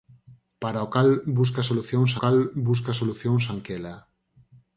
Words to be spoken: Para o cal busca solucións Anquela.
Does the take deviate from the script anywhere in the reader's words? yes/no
yes